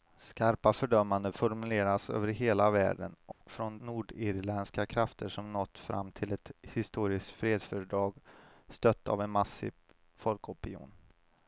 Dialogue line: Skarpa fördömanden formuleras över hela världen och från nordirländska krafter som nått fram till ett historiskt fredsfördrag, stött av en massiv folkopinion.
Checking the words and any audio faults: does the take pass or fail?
fail